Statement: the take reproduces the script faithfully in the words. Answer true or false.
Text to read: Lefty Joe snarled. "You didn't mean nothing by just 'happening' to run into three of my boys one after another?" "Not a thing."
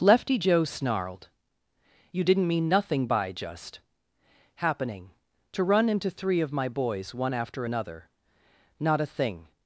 true